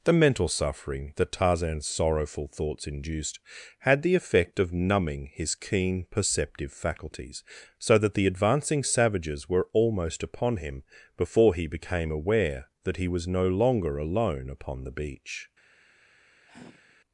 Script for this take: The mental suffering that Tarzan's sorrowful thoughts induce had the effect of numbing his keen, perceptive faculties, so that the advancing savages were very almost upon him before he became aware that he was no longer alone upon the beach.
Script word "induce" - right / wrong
wrong